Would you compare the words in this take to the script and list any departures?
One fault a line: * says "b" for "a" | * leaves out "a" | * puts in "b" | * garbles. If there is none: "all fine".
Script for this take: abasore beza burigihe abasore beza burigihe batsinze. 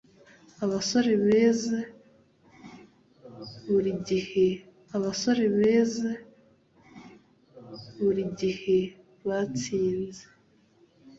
all fine